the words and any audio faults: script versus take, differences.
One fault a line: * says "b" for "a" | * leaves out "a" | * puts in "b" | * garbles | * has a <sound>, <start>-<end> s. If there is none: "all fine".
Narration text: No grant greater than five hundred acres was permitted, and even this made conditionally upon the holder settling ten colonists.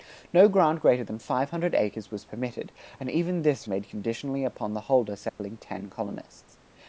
* has a dropout, 5.3-5.4 s